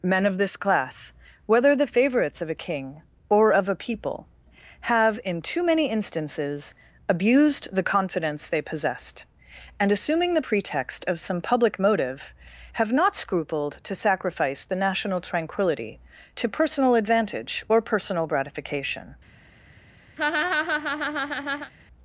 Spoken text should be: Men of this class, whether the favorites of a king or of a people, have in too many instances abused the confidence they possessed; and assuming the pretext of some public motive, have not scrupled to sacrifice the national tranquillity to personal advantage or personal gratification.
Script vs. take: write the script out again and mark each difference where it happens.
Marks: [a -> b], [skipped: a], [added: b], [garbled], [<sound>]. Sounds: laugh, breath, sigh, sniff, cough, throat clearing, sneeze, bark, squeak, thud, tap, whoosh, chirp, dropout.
Men of this class, whether the favorites of a king or of a people, have in too many instances abused the confidence they possessed; and assuming the pretext of some public motive, have not scrupled to sacrifice the national tranquillity to personal advantage or personal gratification. [laugh]